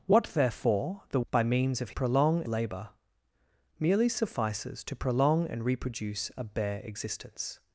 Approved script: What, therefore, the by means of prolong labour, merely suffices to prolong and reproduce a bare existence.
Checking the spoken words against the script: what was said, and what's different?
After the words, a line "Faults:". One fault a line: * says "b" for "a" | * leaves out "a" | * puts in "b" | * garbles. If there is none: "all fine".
What, therefore, the by means of prolong labour, merely suffices to prolong and reproduce a bare existence.
Faults:
all fine